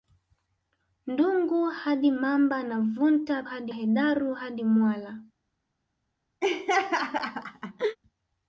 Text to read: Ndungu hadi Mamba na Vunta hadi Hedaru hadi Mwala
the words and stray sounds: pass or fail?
fail